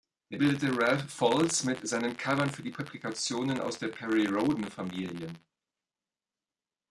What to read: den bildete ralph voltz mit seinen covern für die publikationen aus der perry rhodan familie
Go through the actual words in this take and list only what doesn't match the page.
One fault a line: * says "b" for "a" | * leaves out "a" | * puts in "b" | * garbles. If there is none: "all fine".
all fine